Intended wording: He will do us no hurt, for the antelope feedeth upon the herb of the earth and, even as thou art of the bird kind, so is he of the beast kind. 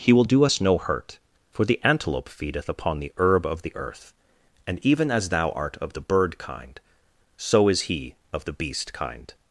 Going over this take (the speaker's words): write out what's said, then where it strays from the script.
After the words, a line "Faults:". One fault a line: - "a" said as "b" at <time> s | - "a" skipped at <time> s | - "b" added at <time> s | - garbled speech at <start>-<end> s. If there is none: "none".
He will do us no hurt, for the antelope feedeth upon the herb of the earth and, even as thou art of the bird kind, so is he of the beast kind.
Faults:
none